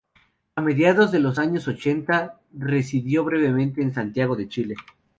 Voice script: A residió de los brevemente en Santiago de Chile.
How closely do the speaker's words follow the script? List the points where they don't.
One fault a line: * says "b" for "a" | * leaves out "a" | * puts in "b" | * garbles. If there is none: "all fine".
* says "mediados" for "residió"
* puts in "años ochenta residió"